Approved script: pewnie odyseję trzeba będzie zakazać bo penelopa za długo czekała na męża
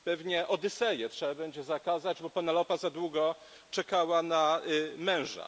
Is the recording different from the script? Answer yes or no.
no